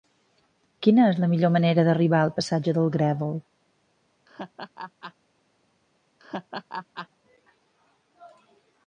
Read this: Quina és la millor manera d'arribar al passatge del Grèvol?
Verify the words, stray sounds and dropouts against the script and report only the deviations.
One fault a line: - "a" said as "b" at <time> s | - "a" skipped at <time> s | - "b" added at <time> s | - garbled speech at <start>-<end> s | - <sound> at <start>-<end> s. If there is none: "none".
- laugh at 4.3-5.1 s
- laugh at 6.2-7.1 s